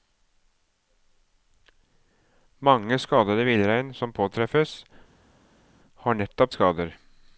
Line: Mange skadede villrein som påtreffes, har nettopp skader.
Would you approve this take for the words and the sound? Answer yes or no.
yes